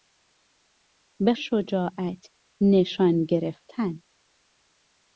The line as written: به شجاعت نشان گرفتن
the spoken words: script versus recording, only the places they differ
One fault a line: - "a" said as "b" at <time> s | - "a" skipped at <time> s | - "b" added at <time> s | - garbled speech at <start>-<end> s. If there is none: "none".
none